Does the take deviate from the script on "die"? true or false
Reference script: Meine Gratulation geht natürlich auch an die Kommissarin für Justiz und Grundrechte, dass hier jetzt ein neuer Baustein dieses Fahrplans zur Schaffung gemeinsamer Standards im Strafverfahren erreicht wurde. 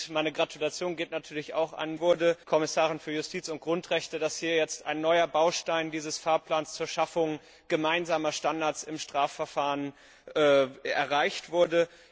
true